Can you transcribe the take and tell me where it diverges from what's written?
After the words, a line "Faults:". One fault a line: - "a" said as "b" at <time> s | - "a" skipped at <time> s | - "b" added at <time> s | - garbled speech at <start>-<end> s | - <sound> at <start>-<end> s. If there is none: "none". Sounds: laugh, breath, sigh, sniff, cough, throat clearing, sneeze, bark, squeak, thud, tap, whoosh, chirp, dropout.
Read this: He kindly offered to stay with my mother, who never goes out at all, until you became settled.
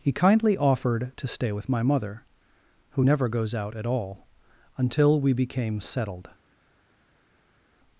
He kindly offered to stay with my mother, who never goes out at all, until we became settled.
Faults:
- "you" said as "we" at 5.2 s